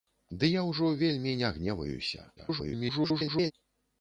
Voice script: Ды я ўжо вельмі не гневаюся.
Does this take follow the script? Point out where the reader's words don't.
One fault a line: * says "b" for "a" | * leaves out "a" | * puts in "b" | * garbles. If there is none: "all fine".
* garbles